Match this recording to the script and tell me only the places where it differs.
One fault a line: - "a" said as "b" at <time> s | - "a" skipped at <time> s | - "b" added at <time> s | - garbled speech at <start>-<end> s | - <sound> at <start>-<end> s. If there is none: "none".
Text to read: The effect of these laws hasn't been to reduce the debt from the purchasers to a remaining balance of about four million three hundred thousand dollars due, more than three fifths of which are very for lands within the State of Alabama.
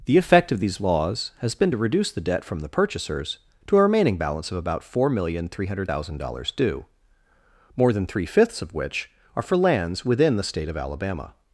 - "hasn't" said as "has" at 1.4 s
- "very" skipped at 9.4 s